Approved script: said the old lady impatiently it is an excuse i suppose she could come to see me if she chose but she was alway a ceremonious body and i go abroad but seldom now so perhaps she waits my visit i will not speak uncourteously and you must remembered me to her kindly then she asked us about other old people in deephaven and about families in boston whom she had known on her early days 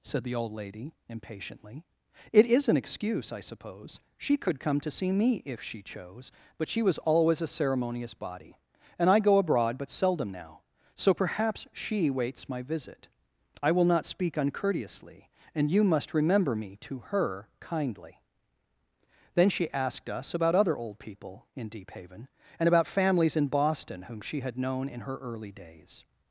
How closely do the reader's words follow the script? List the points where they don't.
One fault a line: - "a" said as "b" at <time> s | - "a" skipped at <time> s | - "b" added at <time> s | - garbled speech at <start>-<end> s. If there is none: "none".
- "alway" said as "always" at 7.0 s
- "remembered" said as "remember" at 16.1 s
- "on" said as "in" at 24.9 s